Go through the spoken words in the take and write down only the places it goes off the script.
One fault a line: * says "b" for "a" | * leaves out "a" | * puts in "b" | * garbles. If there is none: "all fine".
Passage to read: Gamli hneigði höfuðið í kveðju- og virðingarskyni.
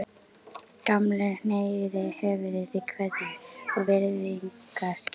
all fine